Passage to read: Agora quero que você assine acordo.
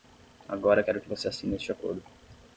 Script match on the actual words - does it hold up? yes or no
no